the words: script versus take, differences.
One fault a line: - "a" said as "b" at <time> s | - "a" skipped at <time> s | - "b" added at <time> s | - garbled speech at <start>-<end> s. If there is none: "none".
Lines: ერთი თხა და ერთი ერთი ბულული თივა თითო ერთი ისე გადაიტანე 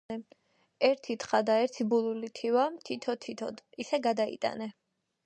- "ერთი" skipped at 1.9 s
- "ერთი" said as "თითოდ" at 3.3 s